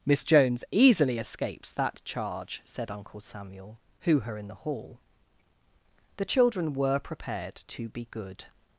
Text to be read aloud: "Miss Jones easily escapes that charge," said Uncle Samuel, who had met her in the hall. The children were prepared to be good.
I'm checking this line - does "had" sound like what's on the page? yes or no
no